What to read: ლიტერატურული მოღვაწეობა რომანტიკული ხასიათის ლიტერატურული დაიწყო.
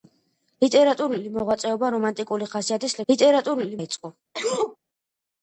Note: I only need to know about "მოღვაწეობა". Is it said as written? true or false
true